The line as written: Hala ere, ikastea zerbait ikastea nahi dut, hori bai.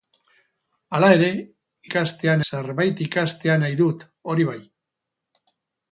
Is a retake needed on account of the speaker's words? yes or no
no